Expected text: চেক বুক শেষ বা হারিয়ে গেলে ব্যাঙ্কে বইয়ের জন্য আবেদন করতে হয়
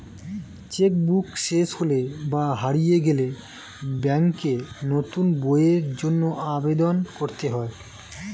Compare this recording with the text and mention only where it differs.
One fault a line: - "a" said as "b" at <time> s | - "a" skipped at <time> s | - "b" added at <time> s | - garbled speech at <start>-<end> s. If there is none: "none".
- "হলে" added at 1.8 s
- "নতুন" added at 4.9 s